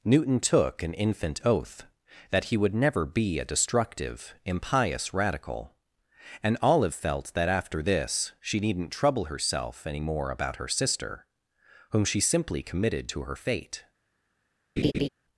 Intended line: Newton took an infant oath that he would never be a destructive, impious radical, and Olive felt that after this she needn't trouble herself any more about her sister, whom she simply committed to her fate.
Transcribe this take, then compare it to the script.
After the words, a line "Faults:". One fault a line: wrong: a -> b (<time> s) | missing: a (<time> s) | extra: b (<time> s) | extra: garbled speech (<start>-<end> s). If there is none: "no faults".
Newton took an infant oath that he would never be a destructive, impious radical, and Olive felt that after this she needn't trouble herself any more about her sister, whom she simply committed to her fate.
Faults:
no faults